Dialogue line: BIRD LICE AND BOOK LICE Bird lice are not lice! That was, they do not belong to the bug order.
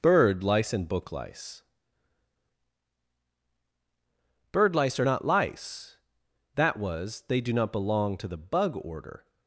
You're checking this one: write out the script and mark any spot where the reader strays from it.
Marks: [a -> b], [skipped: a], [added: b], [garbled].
BIRD LICE AND BOOK LICE Bird lice are not lice! That was, they do not belong to the bug order.